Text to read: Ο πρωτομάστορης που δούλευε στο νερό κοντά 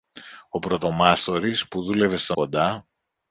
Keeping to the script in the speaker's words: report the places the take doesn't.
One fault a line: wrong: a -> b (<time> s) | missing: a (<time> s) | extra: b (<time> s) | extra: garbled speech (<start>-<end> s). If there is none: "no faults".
missing: νερό (2.4 s)